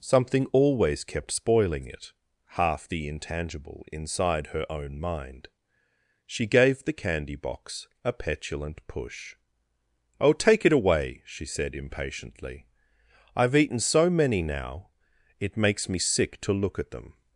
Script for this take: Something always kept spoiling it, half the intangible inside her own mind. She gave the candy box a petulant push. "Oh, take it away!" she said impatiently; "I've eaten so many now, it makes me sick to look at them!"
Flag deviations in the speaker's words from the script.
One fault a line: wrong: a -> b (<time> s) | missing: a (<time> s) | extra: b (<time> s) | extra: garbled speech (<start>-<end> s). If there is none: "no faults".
no faults